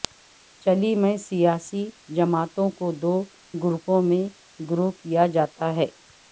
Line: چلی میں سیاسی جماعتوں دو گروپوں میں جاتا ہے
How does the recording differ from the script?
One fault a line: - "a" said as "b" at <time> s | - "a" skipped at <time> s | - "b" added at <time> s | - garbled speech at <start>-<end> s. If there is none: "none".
- "کو" added at 2.8 s
- "گروہ کیا" added at 4.6 s